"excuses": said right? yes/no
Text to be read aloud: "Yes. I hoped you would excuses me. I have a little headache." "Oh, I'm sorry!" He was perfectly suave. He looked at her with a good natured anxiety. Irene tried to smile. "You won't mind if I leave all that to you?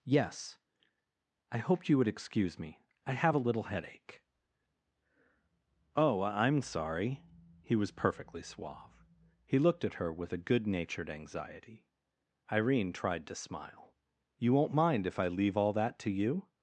no